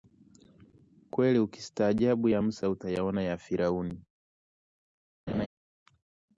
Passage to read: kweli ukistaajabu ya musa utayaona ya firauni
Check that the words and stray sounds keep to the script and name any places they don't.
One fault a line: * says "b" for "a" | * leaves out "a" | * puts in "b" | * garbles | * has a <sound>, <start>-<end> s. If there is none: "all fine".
* has a laugh, 5.3-5.5 s